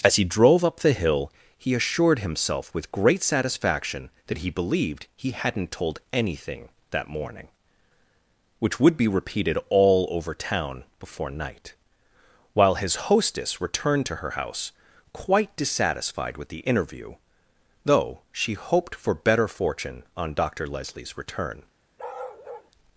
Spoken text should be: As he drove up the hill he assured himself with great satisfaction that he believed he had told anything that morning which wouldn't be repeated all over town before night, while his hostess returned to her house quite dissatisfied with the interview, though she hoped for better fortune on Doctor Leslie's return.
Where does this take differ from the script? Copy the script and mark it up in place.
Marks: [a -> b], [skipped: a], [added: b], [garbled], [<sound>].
As he drove up the hill he assured himself with great satisfaction that he believed he [had -> hadn't] told anything that morning which [wouldn't -> would] be repeated all over town before night, while his hostess returned to her house quite dissatisfied with the interview, though she hoped for better fortune on Doctor Leslie's return. [bark]